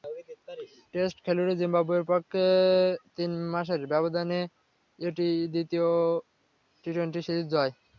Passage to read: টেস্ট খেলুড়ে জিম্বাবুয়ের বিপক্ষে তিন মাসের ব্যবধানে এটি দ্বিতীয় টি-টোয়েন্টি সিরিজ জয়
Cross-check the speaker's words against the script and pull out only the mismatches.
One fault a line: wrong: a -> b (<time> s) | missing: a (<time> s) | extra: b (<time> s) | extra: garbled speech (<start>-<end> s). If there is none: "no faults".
no faults